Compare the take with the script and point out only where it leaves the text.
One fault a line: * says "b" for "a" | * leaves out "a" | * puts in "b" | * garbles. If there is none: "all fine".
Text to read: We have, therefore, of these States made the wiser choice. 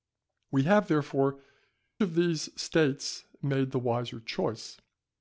all fine